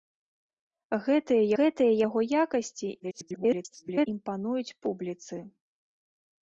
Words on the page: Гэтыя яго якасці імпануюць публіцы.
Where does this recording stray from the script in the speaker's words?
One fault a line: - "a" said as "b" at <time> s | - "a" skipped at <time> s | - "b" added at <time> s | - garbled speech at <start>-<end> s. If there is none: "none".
- "гэтыя" added at 1.6 s
- garbled speech at 3.0-4.1 s